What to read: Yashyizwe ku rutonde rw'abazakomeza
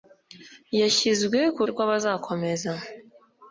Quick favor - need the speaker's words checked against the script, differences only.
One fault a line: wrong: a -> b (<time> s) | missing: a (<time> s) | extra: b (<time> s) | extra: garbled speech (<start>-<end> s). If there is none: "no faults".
missing: rutonde (1.6 s)